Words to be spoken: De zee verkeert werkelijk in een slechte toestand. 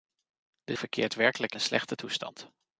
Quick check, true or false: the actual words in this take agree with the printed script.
false